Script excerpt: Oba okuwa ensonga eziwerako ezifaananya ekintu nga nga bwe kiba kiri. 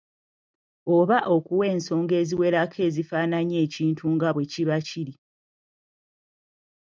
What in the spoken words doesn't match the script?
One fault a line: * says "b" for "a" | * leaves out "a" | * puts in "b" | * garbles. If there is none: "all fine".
* leaves out "nga"